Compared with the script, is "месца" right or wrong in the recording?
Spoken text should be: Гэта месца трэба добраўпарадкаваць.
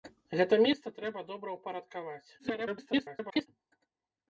right